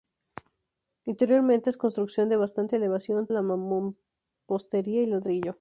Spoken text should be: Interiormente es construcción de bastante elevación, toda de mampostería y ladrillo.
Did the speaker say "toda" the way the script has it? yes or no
no